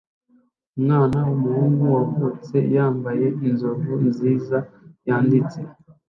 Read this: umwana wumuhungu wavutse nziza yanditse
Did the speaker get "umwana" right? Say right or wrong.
right